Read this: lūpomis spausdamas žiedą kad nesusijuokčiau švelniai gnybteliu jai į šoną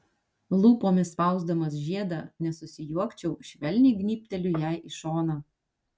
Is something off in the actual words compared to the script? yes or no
yes